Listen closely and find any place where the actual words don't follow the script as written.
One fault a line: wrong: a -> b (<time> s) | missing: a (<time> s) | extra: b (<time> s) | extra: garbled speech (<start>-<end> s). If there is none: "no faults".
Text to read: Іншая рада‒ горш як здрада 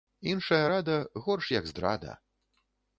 no faults